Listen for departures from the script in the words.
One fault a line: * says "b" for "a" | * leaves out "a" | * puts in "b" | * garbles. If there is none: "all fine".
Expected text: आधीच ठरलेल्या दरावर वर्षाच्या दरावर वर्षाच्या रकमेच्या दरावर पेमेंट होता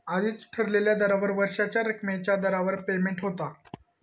* leaves out "दरावर वर्षाच्या"